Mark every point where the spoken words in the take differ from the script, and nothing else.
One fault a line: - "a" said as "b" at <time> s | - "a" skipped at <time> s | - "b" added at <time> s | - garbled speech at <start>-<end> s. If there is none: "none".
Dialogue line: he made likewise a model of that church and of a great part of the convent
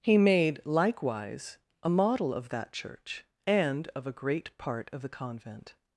none